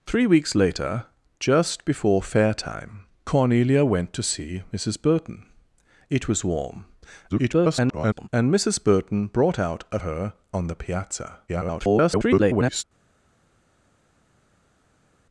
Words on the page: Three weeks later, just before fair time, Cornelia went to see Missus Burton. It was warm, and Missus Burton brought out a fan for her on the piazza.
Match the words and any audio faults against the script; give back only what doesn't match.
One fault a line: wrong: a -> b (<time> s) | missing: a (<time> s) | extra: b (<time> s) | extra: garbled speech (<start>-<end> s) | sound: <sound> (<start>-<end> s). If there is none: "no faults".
extra: garbled speech (7.3-8.3 s)
missing: fan for (10.0 s)
extra: garbled speech (11.5-12.8 s)